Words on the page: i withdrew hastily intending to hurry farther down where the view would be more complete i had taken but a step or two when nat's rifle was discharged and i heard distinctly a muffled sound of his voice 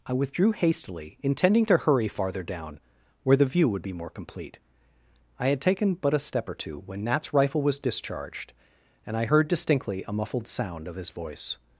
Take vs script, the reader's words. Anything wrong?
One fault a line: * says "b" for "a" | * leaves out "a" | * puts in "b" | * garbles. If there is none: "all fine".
all fine